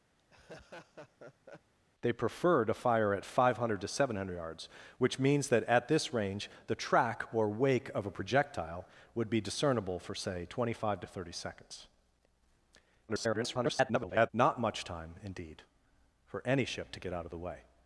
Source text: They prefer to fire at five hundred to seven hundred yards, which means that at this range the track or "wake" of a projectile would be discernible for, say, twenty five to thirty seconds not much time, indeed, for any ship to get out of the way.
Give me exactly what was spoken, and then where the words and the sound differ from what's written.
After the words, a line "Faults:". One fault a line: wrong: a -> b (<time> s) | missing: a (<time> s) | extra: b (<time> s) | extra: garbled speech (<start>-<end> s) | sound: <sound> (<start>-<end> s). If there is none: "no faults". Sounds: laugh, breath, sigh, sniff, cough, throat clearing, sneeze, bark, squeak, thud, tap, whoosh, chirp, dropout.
They prefer to fire at five hundred to seven hundred yards, which means that at this range the track or "wake" of a projectile would be discernible for, say, twenty five to thirty seconds [garbled] not much time, indeed, for any ship to get out of the way.
Faults:
sound: laugh (0.2-1.7 s)
extra: garbled speech (13.1-14.3 s)